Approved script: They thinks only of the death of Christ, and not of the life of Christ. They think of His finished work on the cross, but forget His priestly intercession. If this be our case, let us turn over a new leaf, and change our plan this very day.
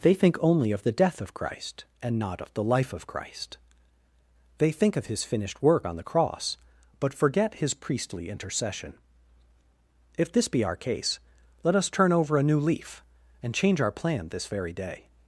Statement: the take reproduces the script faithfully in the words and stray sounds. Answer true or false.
false